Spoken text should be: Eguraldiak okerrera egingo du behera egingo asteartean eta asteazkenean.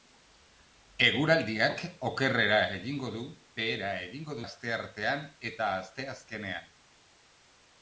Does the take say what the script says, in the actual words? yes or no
yes